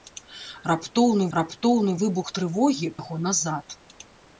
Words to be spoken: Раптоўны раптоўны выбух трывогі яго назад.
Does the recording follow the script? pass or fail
pass